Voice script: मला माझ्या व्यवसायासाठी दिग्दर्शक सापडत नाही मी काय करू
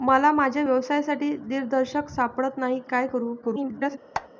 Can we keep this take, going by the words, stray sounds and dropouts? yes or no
no